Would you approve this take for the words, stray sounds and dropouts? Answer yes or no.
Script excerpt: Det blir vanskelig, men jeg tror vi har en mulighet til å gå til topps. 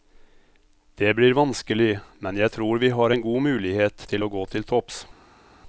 no